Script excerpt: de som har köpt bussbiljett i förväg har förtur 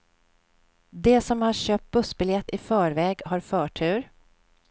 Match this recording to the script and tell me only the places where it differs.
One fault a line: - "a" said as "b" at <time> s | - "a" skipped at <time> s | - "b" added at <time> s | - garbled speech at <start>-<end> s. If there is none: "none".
none